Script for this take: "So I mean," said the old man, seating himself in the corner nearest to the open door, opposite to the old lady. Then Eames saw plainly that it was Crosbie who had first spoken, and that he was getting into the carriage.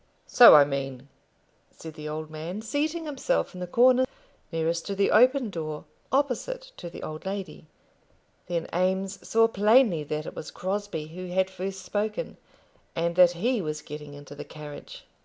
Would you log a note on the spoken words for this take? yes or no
no